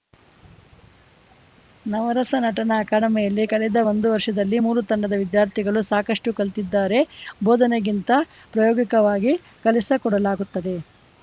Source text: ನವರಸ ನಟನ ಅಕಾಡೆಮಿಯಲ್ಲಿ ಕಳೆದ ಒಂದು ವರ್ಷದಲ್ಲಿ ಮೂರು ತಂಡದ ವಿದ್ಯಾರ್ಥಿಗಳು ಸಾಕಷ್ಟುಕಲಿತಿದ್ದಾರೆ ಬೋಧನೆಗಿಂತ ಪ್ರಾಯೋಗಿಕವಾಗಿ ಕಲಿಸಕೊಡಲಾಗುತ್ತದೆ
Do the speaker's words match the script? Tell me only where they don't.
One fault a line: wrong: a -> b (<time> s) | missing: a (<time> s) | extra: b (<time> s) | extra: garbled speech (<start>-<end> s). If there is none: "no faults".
no faults